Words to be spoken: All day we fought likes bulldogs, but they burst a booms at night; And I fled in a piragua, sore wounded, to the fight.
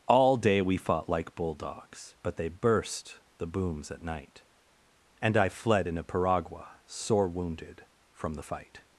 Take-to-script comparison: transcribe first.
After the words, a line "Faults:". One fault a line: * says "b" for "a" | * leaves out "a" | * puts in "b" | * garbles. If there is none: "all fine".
All day we fought like bulldogs, but they burst the booms at night; And I fled in a piragua, sore wounded, from the fight.
Faults:
* says "like" for "likes"
* says "the" for "a"
* says "from" for "to"